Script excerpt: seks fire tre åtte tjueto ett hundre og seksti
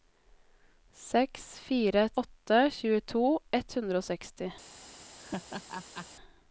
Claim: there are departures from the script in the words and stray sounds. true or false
true